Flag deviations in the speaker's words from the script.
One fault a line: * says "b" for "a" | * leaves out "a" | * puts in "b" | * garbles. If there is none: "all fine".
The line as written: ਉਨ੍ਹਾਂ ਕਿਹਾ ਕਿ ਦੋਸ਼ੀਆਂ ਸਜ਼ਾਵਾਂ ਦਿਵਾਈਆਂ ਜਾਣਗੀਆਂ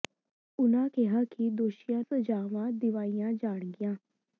all fine